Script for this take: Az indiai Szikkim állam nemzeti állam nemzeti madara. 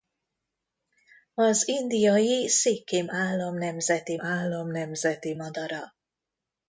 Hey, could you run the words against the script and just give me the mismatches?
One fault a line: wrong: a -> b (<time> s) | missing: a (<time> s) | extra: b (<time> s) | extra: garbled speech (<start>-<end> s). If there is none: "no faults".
no faults